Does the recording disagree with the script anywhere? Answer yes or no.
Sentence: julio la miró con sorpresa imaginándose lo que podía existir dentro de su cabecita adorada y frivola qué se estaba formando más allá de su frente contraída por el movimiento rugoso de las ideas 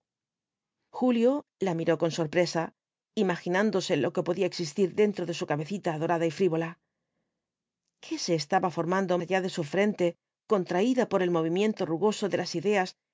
yes